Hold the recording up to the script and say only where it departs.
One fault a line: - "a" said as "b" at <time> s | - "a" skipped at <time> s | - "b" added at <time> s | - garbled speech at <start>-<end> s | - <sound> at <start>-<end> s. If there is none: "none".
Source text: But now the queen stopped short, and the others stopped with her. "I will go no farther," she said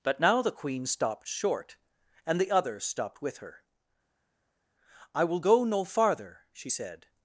none